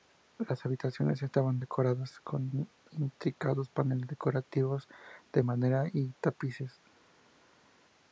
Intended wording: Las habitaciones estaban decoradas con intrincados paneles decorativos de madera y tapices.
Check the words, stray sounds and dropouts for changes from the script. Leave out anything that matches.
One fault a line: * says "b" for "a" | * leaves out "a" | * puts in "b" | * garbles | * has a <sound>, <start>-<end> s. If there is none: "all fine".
all fine